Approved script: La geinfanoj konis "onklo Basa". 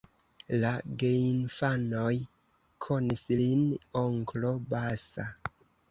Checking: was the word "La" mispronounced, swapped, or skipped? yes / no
no